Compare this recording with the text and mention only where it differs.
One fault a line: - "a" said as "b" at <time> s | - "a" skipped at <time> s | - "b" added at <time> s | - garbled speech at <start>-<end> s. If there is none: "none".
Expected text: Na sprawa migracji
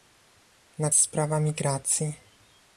none